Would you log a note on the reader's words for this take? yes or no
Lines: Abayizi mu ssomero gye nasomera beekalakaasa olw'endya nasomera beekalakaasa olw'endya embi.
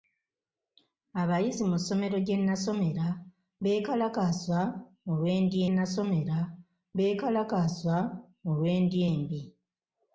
no